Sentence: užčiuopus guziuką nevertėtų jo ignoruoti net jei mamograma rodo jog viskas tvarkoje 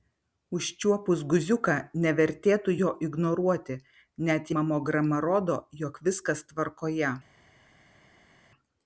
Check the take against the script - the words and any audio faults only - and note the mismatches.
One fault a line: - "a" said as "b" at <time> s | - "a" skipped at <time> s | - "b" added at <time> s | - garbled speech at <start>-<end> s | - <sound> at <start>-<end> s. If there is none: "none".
- "jei" skipped at 4.5 s